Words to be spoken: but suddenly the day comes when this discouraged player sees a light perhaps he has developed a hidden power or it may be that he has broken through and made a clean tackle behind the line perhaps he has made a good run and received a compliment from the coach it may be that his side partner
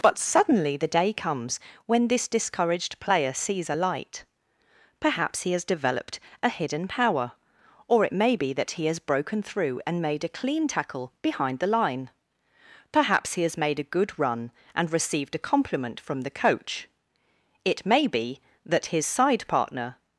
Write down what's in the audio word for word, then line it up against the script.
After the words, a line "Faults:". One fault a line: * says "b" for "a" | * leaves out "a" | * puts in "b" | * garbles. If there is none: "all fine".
but suddenly the day comes when this discouraged player sees a light perhaps he has developed a hidden power or it may be that he has broken through and made a clean tackle behind the line perhaps he has made a good run and received a compliment from the coach it may be that his side partner
Faults:
all fine